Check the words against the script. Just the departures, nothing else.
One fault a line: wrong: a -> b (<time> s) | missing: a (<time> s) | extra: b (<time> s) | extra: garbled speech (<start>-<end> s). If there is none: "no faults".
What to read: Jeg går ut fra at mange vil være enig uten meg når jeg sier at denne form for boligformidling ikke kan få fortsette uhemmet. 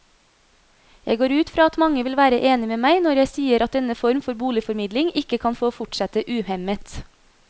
wrong: uten -> med (2.7 s)